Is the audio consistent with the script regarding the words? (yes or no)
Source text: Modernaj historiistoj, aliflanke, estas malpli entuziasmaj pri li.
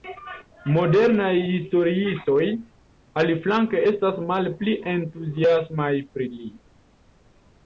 yes